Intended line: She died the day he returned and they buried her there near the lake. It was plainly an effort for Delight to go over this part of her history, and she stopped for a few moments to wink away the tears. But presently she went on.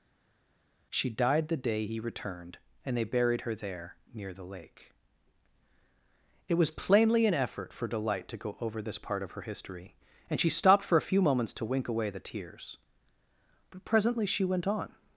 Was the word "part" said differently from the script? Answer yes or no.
no